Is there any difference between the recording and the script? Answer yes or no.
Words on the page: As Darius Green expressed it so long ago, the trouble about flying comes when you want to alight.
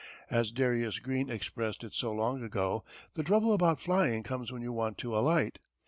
no